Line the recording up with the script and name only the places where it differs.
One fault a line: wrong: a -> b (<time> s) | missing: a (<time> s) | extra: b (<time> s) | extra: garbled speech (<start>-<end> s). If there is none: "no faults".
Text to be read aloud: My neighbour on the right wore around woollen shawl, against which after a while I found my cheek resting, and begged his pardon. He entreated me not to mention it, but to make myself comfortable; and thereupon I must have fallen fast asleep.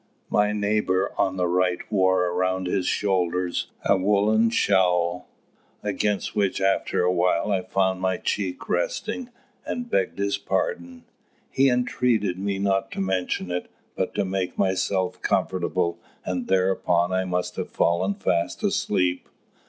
extra: his shoulders a (2.6 s)